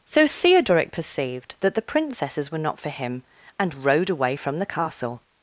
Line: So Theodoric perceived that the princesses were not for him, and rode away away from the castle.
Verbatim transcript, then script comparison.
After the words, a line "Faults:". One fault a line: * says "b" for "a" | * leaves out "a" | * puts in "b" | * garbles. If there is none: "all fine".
So Theodoric perceived that the princesses were not for him, and rode away from the castle.
Faults:
* leaves out "away"